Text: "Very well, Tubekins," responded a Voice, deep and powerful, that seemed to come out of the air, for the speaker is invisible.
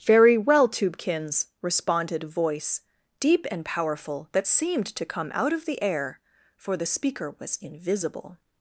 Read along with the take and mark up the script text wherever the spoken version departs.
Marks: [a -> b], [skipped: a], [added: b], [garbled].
"Very well, Tubekins," responded a Voice, deep and powerful, that seemed to come out of the air, for the speaker [is -> was] invisible.